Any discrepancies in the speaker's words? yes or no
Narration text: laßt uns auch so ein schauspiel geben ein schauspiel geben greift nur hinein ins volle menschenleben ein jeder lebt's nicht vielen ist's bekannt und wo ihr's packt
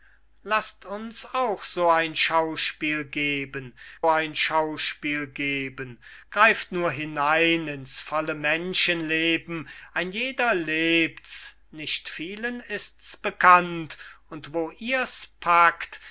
no